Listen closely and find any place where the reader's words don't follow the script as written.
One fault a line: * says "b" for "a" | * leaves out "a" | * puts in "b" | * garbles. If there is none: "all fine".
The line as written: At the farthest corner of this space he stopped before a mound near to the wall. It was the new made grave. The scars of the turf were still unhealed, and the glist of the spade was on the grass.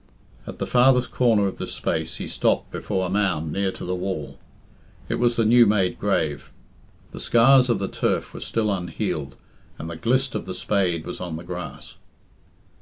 all fine